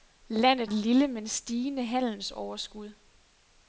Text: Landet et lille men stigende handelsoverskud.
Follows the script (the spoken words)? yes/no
yes